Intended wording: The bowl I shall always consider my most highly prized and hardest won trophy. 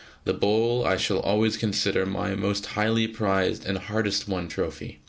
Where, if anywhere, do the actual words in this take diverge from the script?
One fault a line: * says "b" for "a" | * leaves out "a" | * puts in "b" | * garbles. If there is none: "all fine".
all fine